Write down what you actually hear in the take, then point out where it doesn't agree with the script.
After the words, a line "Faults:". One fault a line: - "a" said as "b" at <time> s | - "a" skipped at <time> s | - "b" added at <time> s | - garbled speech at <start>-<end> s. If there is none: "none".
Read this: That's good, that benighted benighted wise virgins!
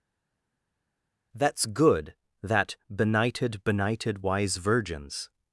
That's good, that benighted benighted wise virgins!
Faults:
none